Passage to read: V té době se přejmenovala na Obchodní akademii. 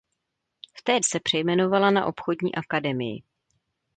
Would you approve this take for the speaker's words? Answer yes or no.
no